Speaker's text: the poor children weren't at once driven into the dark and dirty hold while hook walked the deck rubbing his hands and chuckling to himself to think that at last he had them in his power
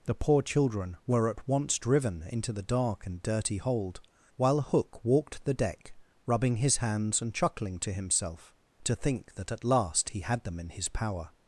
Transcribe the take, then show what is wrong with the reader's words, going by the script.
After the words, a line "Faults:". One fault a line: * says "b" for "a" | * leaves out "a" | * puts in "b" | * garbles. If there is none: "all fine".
the poor children were at once driven into the dark and dirty hold while hook walked the deck rubbing his hands and chuckling to himself to think that at last he had them in his power
Faults:
* says "were" for "weren't"